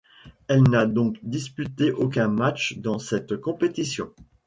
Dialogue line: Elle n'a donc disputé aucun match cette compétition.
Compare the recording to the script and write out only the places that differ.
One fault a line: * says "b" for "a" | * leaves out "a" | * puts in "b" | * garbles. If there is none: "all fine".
* puts in "dans"